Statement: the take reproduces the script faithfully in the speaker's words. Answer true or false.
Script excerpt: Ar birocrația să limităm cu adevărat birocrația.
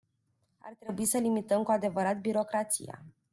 false